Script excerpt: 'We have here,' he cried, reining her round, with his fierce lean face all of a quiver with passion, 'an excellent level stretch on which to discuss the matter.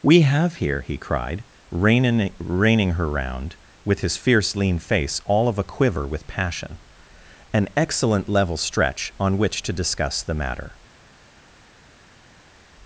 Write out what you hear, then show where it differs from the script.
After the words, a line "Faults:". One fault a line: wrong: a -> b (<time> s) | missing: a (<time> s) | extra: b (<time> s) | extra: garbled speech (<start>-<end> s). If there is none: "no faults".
'We have here,' he cried, reining reining her round, with his fierce lean face all of a quiver with passion, 'an excellent level stretch on which to discuss the matter.
Faults:
extra: reining (2.4 s)